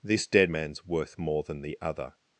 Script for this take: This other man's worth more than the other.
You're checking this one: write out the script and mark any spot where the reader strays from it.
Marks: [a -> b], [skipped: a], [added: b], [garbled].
This [other -> dead] man's worth more than the other.